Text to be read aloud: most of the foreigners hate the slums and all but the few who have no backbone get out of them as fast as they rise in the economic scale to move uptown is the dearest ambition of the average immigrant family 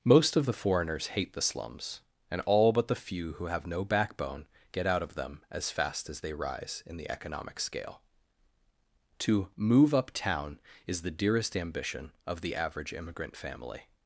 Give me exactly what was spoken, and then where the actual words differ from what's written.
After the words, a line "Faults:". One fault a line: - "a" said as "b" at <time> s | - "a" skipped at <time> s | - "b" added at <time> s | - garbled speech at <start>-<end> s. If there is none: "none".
most of the foreigners hate the slums and all but the few who have no backbone get out of them as fast as they rise in the economic scale to move uptown is the dearest ambition of the average immigrant family
Faults:
none